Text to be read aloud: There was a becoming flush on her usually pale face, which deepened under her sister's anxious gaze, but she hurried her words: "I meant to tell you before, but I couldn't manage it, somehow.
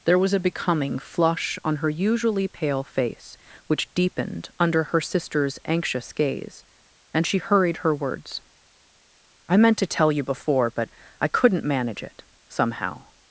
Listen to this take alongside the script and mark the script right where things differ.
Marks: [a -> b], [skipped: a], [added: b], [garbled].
There was a becoming flush on her usually pale face, which deepened under her sister's anxious gaze, [but -> and] she hurried her words: "I meant to tell you before, but I couldn't manage it, somehow.